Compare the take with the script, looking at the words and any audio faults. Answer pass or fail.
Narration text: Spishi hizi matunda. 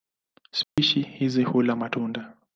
fail